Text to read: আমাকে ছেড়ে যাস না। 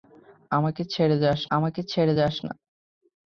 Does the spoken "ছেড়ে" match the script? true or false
true